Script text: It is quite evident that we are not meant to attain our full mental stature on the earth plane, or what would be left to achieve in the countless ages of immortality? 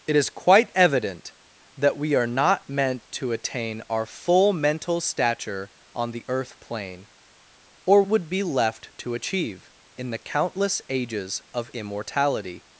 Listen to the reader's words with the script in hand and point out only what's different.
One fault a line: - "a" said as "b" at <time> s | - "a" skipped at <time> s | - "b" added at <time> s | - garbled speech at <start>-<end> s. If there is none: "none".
- "what" skipped at 8.0 s